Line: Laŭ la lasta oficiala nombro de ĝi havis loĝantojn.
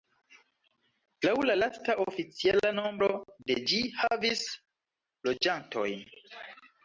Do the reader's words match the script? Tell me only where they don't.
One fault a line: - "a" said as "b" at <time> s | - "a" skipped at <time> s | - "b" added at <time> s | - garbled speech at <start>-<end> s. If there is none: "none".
none